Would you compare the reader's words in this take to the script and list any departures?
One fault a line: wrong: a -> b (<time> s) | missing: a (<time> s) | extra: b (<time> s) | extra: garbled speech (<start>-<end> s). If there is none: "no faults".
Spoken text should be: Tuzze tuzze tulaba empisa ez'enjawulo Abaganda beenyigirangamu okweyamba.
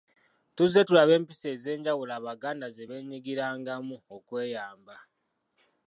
missing: tuzze (0.8 s)
extra: ze (2.7 s)